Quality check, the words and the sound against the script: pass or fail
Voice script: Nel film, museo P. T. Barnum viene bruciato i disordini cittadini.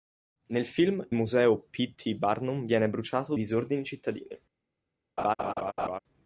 fail